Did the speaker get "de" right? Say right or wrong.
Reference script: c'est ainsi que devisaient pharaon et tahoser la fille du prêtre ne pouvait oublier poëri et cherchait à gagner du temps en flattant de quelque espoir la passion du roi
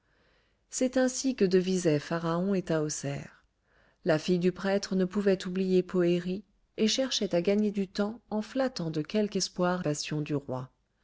right